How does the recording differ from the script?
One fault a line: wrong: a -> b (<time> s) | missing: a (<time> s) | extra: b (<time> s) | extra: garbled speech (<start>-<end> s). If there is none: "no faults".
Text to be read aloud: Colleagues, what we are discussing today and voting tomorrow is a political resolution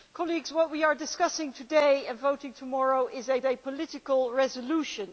extra: a (3.4 s)